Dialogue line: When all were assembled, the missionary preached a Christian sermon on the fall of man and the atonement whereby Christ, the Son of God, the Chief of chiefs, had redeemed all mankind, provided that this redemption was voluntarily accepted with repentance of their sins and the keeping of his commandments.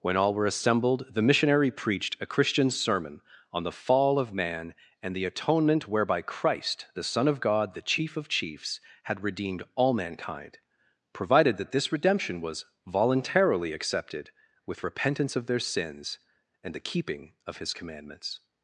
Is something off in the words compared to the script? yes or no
no